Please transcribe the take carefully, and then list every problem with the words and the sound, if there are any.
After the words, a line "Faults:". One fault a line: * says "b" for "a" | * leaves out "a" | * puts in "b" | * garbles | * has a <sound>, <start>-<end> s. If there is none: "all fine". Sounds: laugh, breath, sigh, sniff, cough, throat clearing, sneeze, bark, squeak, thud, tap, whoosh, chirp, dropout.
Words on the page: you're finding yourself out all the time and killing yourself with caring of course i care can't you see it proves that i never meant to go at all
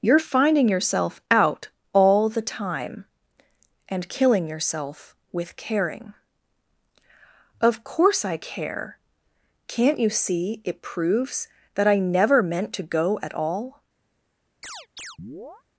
you're finding yourself out all the time and killing yourself with caring of course i care can't you see it proves that i never meant to go at all
Faults:
* has a chirp, 14.6-15.6 s